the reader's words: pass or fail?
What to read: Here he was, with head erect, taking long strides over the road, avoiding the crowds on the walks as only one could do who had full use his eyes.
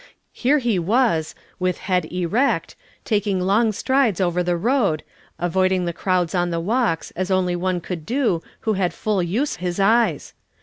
pass